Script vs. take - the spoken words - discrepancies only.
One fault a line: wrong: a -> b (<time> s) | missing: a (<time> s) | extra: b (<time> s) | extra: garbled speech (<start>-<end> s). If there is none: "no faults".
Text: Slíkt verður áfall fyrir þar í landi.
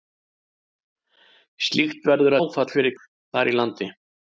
no faults